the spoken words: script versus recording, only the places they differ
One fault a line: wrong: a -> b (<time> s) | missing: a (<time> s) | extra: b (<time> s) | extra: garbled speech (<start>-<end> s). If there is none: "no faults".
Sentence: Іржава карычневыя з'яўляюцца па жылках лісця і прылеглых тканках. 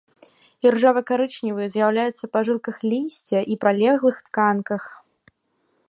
no faults